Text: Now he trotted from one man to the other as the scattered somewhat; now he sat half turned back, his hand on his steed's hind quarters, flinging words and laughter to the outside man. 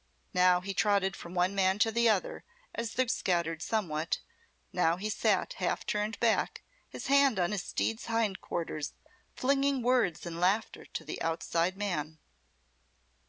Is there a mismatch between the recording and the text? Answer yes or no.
no